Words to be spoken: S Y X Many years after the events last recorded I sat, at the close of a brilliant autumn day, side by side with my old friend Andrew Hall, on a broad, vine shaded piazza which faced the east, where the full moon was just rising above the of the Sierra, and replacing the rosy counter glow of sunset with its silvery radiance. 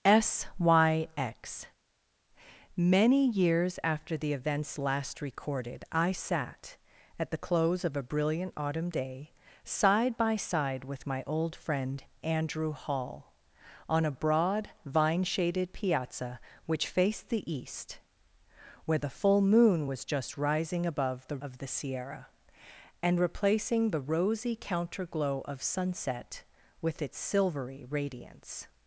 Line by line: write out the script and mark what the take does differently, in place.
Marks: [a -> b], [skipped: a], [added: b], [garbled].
S Y X Many years after the events last recorded I sat, at the close of a brilliant autumn day, side by side with my old friend Andrew Hall, on a broad, vine shaded piazza which faced the east, where the full moon was just rising above the of the Sierra, and replacing the rosy counter glow of sunset with its silvery radiance.